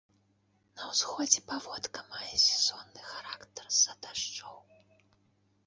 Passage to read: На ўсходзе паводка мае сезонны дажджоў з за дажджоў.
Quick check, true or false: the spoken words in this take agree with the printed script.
false